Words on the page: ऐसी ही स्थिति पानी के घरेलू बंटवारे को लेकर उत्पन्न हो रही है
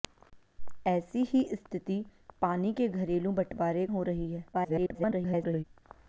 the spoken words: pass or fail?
fail